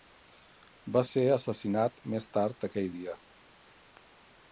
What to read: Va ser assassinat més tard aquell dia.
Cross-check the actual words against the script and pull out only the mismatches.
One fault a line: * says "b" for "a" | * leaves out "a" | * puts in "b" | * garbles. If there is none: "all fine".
all fine